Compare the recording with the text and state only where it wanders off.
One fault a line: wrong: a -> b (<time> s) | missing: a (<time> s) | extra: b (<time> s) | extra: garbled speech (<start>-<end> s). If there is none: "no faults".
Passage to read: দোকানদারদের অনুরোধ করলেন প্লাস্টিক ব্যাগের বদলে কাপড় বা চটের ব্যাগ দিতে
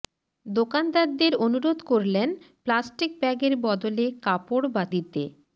missing: চটের ব্যাগ (4.8 s)